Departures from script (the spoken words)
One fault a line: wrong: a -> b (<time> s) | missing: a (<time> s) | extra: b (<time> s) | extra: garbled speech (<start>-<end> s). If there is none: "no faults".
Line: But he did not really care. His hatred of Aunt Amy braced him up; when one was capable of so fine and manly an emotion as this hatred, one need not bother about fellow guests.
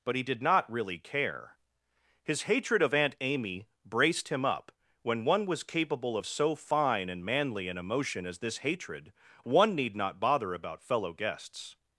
no faults